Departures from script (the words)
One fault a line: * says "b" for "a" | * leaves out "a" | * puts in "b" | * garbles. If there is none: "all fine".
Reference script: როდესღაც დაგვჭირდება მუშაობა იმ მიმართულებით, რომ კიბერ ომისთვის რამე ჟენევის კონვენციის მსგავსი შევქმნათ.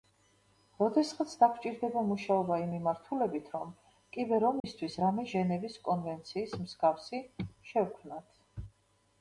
all fine